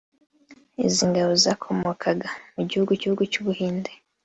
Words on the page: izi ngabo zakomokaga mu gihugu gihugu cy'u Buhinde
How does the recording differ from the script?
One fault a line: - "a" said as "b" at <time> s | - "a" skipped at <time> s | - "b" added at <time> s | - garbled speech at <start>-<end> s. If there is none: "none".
none